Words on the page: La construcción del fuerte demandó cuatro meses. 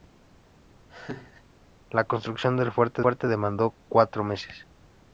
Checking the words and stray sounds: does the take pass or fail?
fail